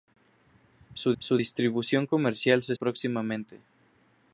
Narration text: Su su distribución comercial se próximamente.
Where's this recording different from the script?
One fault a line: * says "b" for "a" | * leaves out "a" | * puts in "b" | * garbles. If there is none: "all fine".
all fine